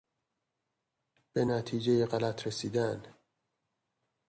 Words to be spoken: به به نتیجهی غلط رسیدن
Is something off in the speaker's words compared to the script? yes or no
yes